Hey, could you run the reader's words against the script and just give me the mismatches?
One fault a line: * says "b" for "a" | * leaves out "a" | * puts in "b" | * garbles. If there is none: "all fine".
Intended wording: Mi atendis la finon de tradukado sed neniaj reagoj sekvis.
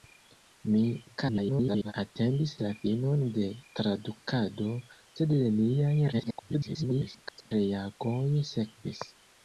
* garbles
* garbles